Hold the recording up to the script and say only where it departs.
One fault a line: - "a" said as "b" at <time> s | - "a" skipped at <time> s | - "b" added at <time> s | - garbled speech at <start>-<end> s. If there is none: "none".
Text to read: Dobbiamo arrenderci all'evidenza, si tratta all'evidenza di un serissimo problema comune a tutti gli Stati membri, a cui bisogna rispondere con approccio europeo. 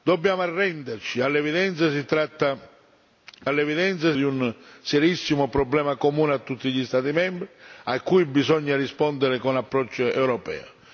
none